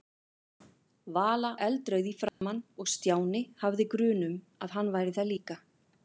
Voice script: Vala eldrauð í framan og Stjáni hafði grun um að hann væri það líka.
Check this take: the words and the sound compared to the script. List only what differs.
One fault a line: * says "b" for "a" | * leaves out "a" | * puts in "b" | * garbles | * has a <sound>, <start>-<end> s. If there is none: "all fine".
* has a dropout, 2.3-2.4 s